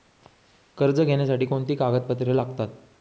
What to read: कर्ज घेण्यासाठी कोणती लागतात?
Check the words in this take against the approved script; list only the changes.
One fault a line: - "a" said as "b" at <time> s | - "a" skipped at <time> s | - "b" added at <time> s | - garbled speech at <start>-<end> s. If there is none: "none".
- "कागदपत्रे" added at 1.7 s